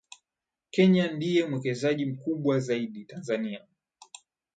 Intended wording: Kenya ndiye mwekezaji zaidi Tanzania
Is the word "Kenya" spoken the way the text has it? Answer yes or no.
yes